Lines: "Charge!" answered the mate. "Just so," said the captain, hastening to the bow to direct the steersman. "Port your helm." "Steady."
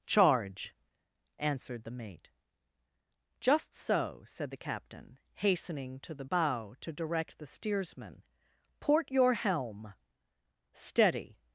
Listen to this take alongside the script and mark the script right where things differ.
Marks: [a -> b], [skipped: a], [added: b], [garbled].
"Charge!" answered the mate. "Just so," said the captain, hastening to the bow to direct the steersman. "Port your helm." "Steady."